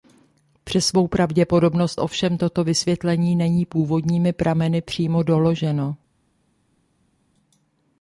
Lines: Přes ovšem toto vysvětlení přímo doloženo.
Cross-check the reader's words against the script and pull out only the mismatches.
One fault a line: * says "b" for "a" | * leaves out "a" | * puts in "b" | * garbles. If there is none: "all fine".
* puts in "svou pravděpodobnost"
* puts in "není původními prameny"